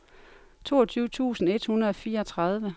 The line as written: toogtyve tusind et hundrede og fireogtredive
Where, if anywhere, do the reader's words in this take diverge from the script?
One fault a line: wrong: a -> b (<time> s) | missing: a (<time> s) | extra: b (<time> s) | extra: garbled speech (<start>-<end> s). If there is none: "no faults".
no faults